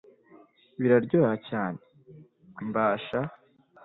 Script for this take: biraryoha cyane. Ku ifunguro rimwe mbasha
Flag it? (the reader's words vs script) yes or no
yes